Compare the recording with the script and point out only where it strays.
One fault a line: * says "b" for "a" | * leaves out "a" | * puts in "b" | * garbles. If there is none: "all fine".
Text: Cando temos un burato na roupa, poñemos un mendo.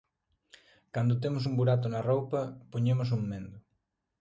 all fine